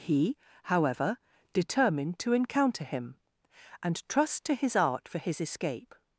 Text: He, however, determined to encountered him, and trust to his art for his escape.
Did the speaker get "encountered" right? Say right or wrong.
wrong